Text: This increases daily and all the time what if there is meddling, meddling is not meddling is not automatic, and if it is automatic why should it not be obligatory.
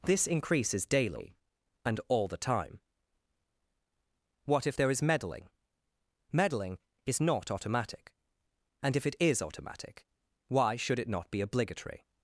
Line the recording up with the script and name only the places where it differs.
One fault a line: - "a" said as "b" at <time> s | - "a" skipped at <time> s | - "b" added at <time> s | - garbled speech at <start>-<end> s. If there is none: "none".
- "meddling is not" skipped at 7.5 s